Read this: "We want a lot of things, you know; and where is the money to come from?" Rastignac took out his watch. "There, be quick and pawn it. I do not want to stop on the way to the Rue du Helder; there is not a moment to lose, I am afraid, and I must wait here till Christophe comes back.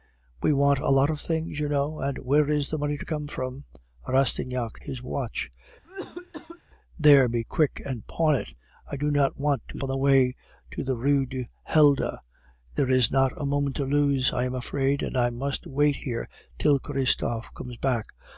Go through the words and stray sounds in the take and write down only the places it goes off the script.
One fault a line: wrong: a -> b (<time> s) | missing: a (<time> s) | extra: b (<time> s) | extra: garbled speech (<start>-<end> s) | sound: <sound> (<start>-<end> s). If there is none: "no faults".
missing: took out (4.8 s)
sound: cough (5.8-6.6 s)
missing: stop (9.8 s)